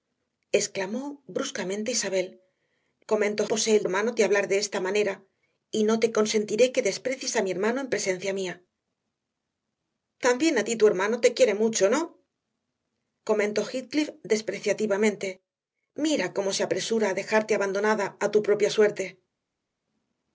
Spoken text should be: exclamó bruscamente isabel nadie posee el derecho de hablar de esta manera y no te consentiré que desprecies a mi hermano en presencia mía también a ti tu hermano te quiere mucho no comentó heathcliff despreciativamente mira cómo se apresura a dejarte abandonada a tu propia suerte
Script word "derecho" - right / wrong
wrong